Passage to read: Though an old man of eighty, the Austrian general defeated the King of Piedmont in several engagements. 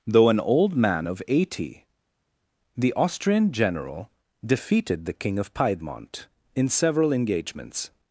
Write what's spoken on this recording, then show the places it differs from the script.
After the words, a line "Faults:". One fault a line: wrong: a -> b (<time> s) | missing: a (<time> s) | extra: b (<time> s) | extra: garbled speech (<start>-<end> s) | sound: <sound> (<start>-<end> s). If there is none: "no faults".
Though an old man of eighty, the Austrian general defeated the King of Piedmont in several engagements.
Faults:
no faults